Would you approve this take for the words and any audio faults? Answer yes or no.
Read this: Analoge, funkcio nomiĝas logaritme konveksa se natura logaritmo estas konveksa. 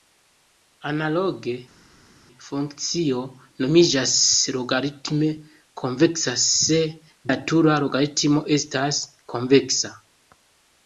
yes